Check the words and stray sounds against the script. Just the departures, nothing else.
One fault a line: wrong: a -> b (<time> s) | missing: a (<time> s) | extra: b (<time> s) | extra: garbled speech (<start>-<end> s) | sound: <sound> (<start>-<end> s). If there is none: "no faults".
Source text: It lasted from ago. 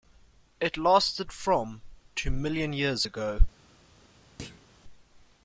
extra: to million years (2.1 s)
sound: thud (4.4-4.7 s)